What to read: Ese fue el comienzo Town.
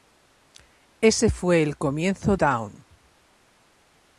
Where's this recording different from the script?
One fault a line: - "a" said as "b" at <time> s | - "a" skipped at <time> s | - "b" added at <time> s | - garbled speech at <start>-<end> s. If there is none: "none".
none